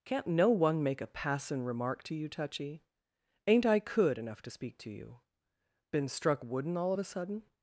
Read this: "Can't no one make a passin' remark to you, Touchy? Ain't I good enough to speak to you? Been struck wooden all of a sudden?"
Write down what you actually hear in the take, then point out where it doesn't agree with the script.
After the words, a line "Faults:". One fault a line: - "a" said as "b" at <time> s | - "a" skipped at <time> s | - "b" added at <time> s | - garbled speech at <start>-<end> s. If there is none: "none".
"Can't no one make a passin' remark to you, Touchy? Ain't I could enough to speak to you? Been struck wooden all of a sudden?"
Faults:
- "good" said as "could" at 3.8 s